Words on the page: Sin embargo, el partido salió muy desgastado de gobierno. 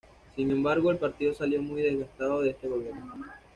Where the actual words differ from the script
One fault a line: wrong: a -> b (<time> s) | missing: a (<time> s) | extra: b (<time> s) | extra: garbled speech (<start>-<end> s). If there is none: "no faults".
extra: este (2.5 s)